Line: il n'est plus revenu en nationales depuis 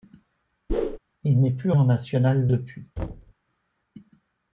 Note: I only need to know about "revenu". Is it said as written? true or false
false